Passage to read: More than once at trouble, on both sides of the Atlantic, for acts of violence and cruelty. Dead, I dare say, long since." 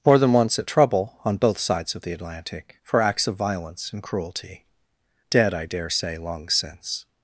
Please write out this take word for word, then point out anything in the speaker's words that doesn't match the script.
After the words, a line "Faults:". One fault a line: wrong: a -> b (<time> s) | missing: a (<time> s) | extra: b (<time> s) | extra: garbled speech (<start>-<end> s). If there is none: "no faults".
More than once at trouble, on both sides of the Atlantic, for acts of violence and cruelty. Dead, I dare say, long since."
Faults:
no faults